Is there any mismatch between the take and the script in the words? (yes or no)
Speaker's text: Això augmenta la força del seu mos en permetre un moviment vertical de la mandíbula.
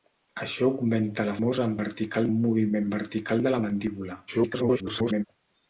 yes